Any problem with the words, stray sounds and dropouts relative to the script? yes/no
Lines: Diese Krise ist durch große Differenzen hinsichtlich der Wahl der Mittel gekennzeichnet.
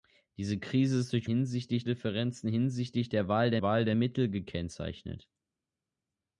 yes